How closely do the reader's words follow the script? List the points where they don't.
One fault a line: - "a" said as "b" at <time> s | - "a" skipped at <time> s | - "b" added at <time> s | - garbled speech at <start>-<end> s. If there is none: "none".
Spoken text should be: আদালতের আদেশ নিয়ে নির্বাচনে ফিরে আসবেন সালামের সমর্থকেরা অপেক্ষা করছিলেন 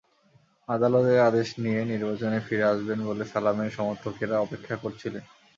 - "বলে" added at 3.0 s